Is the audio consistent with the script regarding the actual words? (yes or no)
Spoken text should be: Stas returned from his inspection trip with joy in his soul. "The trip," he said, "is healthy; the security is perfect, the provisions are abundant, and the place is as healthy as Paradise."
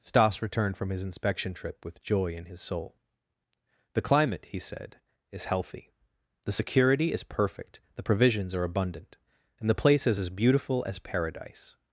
no